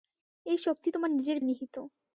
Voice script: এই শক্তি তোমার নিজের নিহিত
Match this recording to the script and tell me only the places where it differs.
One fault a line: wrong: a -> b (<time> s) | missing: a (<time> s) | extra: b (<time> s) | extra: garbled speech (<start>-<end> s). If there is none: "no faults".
no faults